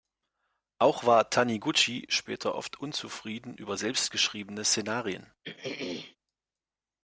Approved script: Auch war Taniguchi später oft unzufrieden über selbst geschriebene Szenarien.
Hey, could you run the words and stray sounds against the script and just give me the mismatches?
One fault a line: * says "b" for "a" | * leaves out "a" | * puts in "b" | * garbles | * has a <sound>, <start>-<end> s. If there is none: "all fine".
* has a throat clearing, 5.4-6.2 s